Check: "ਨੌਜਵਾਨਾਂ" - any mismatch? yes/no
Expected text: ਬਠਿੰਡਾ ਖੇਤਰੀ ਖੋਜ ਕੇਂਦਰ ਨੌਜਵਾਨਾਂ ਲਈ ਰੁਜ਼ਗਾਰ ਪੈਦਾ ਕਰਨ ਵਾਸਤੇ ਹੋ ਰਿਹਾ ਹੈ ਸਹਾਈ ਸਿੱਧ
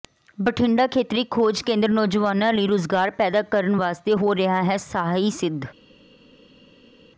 no